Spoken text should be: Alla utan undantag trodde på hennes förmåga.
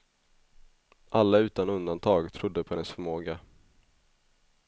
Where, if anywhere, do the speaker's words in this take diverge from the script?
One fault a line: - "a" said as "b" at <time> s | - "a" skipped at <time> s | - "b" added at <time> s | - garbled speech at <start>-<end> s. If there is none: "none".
none